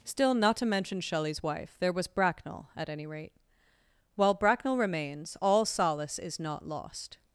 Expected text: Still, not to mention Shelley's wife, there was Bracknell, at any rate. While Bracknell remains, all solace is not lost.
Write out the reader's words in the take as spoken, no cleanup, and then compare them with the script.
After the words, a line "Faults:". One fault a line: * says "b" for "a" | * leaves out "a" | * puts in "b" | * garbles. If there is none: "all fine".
Still, not to mention Shelley's wife, there was Bracknell, at any rate. While Bracknell remains, all solace is not lost.
Faults:
all fine